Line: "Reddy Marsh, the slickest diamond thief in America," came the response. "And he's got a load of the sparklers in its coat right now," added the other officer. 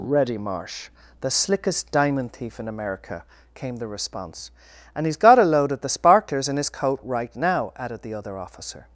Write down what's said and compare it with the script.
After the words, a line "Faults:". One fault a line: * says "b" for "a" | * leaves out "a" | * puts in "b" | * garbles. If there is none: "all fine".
"Reddy Marsh, the slickest diamond thief in America," came the response. "And he's got a load of the sparklers in his coat right now," added the other officer.
Faults:
* says "his" for "its"